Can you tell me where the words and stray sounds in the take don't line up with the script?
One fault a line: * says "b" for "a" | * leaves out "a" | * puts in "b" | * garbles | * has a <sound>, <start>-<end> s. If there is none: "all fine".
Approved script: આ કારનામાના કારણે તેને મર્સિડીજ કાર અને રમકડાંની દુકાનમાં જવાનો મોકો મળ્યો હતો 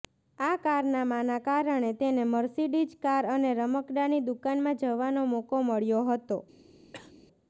* has a cough, 6.9-7.1 s